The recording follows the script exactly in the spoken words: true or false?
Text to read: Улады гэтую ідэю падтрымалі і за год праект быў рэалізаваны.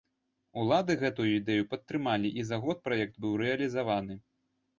true